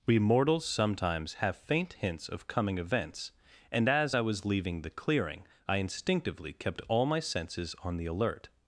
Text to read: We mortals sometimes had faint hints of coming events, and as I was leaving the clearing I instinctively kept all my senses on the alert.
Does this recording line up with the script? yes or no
no